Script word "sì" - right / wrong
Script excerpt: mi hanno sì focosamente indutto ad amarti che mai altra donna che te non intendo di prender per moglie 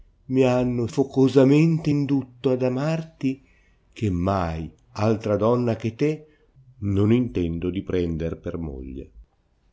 wrong